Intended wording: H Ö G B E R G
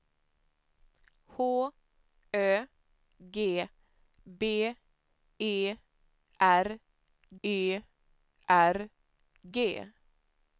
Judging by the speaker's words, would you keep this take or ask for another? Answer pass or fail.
fail